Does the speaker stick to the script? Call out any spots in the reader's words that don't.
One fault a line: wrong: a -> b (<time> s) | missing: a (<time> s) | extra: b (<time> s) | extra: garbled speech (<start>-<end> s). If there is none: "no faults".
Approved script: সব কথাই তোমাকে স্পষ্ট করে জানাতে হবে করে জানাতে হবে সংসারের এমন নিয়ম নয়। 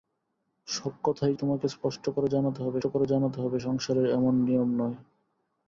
no faults